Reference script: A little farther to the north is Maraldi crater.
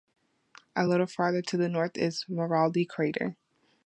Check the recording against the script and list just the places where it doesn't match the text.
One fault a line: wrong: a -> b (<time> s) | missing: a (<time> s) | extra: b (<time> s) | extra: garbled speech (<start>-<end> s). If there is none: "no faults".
no faults